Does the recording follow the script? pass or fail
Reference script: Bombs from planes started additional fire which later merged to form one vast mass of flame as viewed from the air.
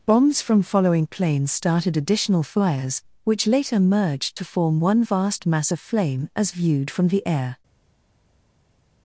fail